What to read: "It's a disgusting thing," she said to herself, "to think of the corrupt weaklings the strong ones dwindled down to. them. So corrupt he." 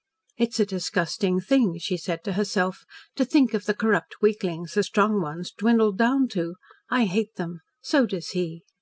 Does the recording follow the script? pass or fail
fail